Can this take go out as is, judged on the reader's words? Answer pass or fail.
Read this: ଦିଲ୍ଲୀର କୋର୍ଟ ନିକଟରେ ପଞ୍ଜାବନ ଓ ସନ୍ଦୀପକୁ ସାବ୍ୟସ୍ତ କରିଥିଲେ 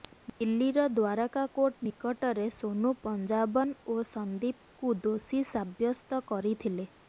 fail